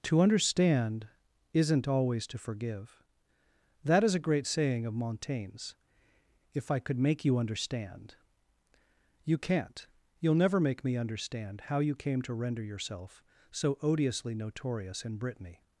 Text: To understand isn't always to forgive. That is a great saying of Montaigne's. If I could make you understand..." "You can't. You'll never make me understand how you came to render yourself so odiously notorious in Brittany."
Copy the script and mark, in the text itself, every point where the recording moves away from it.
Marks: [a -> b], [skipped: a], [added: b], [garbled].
To understand isn't always to forgive. That is a great saying of Montaigne's. If I could make you understand..." "You can't. You'll never make me understand how you came to render yourself so odiously notorious in Brittany."